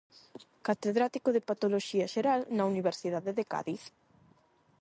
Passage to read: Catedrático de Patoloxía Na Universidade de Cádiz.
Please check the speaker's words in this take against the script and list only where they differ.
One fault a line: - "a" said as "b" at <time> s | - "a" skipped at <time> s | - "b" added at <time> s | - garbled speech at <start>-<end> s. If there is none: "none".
- "Xeral" added at 2.1 s